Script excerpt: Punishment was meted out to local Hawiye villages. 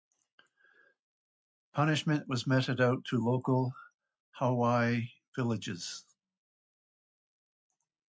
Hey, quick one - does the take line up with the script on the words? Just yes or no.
yes